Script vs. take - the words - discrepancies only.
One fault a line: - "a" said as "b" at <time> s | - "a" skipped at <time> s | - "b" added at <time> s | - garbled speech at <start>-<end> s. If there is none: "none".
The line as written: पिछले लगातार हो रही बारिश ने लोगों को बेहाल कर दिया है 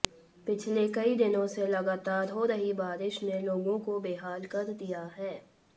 - "कई दिनों से" added at 0.9 s